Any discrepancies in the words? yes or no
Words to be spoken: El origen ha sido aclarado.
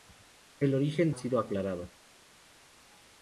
no